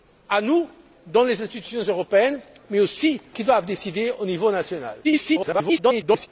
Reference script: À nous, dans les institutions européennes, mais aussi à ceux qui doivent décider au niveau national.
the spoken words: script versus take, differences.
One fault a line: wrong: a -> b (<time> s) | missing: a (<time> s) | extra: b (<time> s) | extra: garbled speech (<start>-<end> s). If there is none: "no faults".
missing: à ceux (3.2 s)
extra: garbled speech (5.0-6.3 s)